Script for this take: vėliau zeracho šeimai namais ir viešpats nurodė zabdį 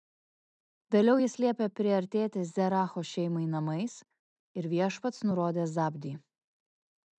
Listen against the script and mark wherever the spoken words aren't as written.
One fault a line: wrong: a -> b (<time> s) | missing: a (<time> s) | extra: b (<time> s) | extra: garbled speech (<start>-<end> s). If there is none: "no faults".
extra: jis liepė priartėti (1.2 s)